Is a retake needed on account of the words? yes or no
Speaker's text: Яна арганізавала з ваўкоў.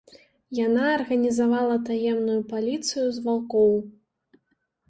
yes